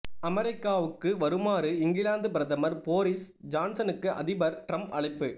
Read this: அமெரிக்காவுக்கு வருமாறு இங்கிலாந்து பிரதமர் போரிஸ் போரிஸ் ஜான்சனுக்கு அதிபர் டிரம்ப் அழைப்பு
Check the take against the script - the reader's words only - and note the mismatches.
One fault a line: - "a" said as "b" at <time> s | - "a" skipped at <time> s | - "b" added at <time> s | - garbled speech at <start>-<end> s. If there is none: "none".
- "போரிஸ்" skipped at 3.3 s